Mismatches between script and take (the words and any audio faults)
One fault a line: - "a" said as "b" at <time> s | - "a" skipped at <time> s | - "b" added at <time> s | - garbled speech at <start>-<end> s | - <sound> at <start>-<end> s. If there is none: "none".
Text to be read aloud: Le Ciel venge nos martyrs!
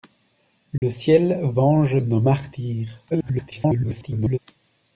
- dropout at 0.8-0.8 s
- garbled speech at 3.1-4.4 s